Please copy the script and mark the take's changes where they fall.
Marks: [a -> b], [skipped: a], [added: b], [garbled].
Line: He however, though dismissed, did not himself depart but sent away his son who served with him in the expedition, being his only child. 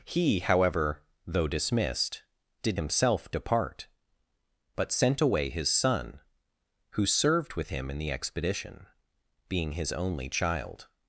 He however, though dismissed, did [skipped: not] himself depart but sent away his son who served with him in the expedition, being his only child.